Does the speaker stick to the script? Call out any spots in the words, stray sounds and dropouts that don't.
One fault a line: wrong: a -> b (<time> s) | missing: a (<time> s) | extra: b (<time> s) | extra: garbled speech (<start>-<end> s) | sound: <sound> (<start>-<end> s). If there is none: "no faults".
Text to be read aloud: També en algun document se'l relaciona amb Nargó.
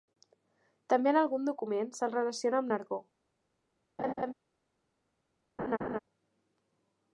sound: laugh (4.0-4.3 s)
sound: laugh (5.6-6.0 s)